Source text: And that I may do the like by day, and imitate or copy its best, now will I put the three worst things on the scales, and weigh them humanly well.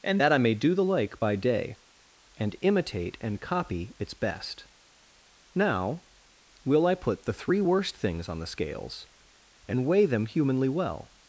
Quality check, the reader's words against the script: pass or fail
fail